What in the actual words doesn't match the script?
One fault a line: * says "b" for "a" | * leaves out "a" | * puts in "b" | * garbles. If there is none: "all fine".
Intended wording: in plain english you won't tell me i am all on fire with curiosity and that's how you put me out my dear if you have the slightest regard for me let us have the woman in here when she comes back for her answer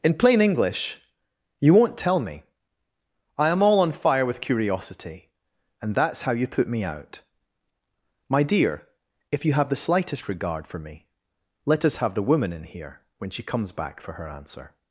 all fine